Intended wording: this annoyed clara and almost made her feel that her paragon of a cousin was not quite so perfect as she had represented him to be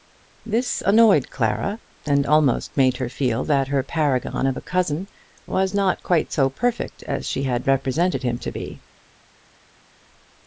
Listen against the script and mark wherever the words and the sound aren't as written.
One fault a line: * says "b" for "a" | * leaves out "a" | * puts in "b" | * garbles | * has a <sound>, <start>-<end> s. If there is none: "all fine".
all fine